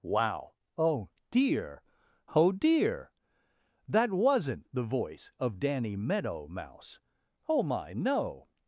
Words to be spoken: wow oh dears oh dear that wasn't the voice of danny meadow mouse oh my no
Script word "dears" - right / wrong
wrong